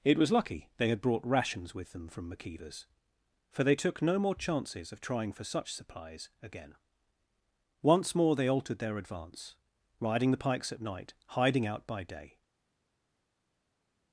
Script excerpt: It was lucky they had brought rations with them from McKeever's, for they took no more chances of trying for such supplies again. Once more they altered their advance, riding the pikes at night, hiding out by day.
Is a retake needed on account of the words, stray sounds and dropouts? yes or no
no